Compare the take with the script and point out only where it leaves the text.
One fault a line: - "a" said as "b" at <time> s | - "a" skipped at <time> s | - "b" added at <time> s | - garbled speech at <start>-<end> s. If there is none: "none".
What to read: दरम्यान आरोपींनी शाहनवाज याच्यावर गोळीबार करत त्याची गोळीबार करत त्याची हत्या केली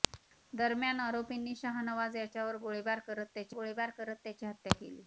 none